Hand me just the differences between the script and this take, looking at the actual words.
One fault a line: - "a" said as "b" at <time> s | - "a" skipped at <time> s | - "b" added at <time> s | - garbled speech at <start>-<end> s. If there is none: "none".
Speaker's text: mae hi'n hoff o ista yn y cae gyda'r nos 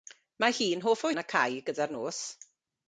- "ista" skipped at 1.1 s